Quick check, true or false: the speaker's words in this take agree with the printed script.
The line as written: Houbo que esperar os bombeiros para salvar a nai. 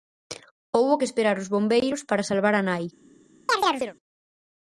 true